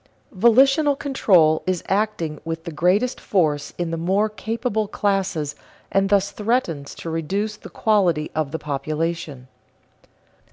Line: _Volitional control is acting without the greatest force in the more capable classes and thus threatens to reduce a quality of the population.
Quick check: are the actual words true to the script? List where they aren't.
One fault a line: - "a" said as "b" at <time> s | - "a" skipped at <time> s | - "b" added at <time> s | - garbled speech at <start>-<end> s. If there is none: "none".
- "without" said as "with" at 2.4 s
- "a" said as "the" at 7.6 s